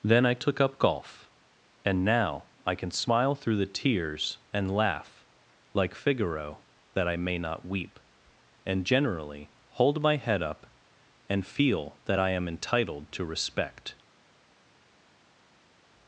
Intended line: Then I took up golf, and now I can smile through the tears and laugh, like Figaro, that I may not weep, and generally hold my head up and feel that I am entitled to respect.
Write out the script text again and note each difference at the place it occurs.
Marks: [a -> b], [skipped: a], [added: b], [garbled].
Then I took up golf, and now I can smile through the tears and laugh, like Figaro, that I may not weep, and generally hold my head up and feel that I am entitled to respect.